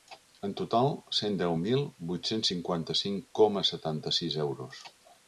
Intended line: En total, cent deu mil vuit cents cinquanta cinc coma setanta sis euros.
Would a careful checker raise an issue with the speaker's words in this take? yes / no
no